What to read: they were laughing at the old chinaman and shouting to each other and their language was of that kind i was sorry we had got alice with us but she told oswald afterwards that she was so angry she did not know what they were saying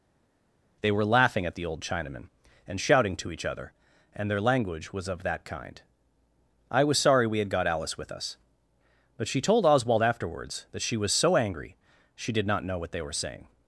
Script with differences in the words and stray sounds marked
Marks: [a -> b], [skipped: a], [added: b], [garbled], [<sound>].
they were laughing at the old chinaman and shouting to each other and their language was of that kind i was sorry we had got alice with us but she told oswald afterwards that she was so angry she did not know what they were saying